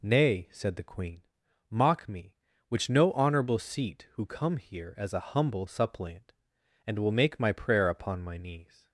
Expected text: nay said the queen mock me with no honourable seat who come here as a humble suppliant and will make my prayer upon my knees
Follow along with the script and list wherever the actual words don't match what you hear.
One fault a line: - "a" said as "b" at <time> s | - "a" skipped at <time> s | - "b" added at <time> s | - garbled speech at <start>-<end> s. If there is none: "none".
- "with" said as "which" at 2.7 s